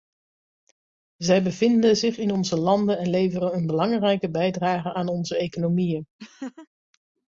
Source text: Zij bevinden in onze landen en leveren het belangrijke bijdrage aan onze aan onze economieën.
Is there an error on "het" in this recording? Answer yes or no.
yes